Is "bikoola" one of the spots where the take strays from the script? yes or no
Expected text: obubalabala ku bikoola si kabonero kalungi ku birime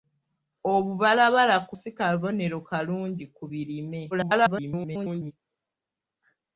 yes